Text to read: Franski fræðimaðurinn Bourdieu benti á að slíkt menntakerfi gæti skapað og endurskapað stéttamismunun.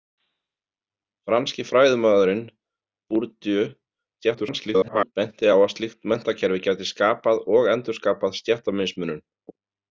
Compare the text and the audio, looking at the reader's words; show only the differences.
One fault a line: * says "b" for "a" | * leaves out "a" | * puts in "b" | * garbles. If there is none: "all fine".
* garbles